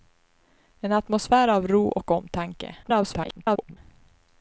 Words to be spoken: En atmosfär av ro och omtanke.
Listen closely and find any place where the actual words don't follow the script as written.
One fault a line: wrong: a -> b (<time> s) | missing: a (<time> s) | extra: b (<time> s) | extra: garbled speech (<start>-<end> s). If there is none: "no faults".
extra: garbled speech (2.8-3.8 s)